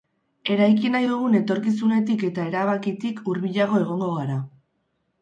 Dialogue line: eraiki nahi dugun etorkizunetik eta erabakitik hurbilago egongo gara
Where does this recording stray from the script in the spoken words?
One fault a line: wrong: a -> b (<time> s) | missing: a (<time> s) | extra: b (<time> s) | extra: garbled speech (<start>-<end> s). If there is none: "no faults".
no faults